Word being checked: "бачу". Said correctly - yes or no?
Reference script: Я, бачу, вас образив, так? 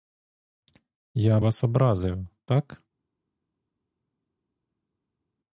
no